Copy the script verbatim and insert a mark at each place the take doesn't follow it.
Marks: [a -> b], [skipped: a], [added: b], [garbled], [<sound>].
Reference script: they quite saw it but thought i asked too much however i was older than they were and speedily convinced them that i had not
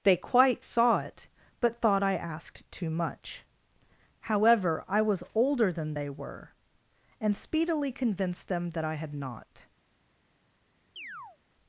they quite saw it but thought i asked too much however i was older than they were and speedily convinced them that i had not [chirp]